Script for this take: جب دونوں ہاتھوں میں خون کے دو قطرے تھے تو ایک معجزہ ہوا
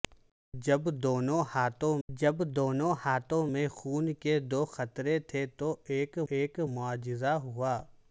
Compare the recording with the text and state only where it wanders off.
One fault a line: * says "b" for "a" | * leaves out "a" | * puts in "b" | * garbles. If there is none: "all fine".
* puts in "جب دونوں ہاتھوں"
* puts in "ایک"